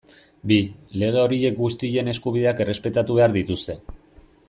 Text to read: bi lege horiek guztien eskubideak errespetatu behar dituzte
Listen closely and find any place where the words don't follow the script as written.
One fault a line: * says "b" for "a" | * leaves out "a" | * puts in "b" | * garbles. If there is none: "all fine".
all fine